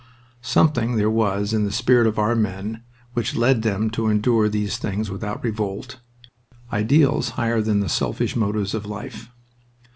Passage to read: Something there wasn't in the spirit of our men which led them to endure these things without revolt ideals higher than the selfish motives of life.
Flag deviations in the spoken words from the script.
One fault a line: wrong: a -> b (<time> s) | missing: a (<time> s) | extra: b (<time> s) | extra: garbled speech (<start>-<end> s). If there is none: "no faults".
wrong: wasn't -> was (1.1 s)